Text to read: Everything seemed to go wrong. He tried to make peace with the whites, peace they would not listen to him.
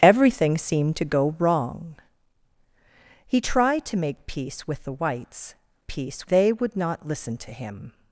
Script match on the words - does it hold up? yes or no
yes